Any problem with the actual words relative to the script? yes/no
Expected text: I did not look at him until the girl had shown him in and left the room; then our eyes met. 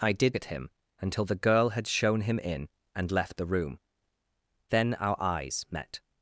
yes